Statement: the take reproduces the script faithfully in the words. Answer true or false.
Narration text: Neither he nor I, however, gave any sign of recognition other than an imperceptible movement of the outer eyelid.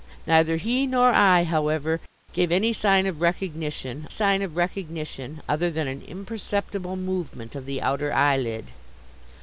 false